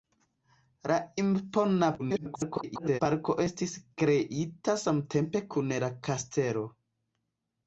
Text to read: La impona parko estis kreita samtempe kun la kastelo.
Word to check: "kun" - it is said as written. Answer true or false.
true